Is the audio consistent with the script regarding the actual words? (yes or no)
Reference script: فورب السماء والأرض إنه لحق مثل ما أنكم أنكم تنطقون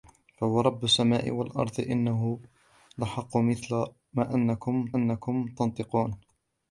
yes